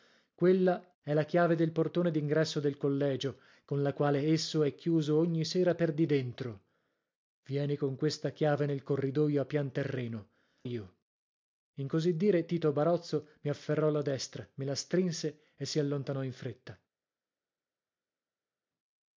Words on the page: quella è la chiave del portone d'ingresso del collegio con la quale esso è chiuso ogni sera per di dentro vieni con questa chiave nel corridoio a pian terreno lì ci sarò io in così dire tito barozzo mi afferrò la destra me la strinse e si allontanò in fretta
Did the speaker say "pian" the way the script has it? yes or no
yes